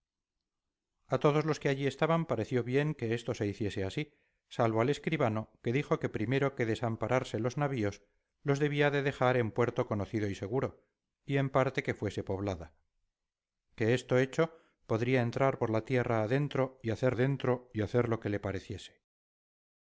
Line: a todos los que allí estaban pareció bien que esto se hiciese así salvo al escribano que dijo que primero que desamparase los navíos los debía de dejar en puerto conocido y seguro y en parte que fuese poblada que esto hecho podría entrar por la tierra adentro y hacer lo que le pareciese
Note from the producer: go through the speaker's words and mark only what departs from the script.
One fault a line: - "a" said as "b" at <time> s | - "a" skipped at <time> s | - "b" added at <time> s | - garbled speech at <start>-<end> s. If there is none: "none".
- "adentro y hacer" added at 17.1 s